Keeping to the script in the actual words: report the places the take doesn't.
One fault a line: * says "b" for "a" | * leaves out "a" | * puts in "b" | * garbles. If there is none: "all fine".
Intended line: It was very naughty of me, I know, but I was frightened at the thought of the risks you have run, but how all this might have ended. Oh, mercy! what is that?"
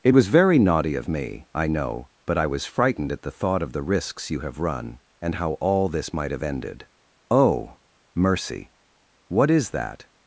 * says "and" for "but"